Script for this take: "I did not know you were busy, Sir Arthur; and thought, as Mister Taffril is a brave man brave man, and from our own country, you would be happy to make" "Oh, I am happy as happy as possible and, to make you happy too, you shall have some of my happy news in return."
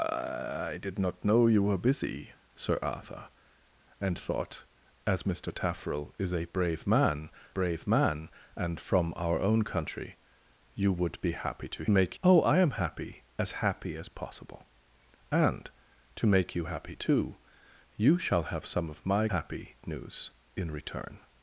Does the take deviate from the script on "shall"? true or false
false